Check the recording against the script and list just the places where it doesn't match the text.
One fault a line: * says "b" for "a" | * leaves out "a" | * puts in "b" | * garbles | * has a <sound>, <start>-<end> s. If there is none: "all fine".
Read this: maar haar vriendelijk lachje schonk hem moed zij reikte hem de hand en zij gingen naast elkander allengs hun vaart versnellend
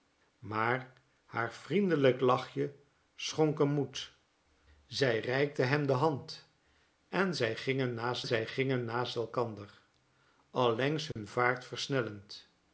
* puts in "zij gingen naast"
* has a dropout, 11.1-11.2 s